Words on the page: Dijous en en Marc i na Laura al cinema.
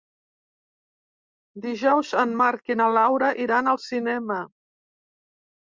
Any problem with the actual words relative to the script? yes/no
yes